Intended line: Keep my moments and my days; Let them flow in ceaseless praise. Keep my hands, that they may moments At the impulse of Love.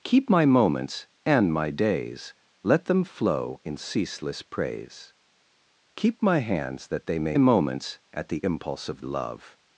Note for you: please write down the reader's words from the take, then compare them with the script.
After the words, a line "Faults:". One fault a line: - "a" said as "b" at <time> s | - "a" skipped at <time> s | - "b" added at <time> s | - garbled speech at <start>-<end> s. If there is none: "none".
Keep my moments and my days; Let them flow in ceaseless praise. Keep my hands, that they may moments At the impulse of Love.
Faults:
none